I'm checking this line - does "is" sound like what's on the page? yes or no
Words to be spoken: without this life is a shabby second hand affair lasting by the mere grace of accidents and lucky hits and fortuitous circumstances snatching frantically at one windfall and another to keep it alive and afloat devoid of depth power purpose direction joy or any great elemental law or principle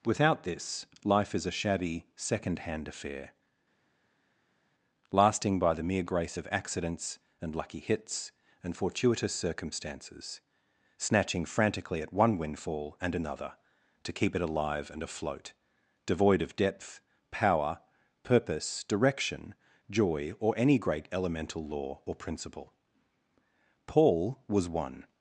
yes